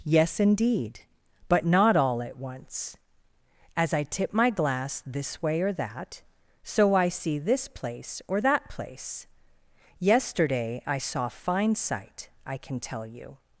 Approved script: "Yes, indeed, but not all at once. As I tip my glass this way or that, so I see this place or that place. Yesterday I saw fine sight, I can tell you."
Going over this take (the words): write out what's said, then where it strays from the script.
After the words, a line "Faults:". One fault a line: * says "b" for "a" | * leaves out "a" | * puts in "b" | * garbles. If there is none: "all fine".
"Yes, indeed, but not all at once. As I tip my glass this way or that, so I see this place or that place. Yesterday I saw fine sight, I can tell you."
Faults:
all fine